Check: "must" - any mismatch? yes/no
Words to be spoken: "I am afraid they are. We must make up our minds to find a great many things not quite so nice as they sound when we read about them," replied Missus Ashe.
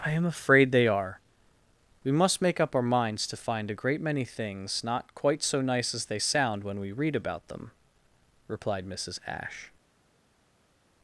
no